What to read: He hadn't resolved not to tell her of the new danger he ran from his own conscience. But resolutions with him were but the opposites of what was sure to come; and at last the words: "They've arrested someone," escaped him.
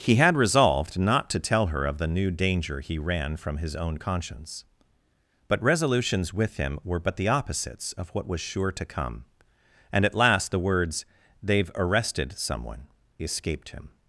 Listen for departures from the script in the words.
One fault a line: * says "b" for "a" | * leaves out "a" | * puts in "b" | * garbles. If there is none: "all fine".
* says "had" for "hadn't"